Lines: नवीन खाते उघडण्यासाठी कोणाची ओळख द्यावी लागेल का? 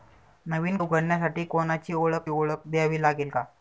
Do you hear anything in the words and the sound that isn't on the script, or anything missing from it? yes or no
yes